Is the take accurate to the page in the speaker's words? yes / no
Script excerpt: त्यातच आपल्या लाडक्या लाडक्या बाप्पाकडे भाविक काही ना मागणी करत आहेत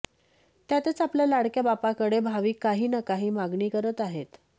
no